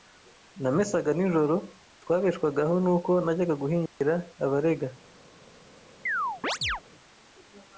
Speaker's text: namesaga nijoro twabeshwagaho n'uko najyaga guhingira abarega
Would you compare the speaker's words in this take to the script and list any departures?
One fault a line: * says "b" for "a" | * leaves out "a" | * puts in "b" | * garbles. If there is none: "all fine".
all fine